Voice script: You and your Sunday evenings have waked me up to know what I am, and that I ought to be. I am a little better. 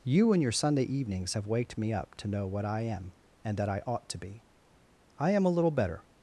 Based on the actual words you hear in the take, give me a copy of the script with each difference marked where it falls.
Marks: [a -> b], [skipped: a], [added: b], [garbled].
You and your Sunday evenings have waked me up to know what I am, and that I ought to be. I am a little better.